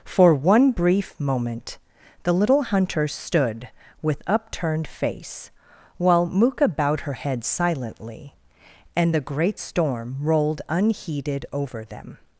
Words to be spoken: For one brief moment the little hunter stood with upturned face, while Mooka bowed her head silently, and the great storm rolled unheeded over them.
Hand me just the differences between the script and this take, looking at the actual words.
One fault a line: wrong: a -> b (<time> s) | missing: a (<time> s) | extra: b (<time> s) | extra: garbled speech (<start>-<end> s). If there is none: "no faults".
no faults